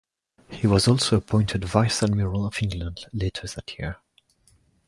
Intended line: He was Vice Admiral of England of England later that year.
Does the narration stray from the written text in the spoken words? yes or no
yes